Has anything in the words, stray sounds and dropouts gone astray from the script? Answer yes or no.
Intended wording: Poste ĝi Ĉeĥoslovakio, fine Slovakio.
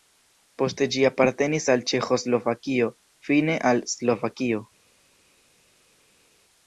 yes